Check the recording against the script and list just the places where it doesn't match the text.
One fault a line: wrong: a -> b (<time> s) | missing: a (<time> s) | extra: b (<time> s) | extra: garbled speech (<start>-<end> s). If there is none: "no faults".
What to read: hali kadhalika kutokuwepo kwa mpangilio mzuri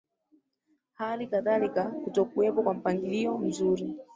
no faults